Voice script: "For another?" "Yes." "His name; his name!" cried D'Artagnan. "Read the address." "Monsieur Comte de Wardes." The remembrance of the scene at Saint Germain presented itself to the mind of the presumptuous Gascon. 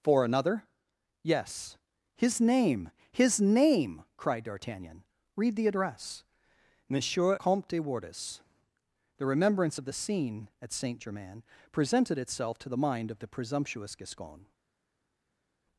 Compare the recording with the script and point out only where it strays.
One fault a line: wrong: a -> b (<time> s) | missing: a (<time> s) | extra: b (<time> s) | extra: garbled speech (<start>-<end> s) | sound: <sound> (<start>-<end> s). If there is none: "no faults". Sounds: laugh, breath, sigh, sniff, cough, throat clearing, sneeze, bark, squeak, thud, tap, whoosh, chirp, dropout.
no faults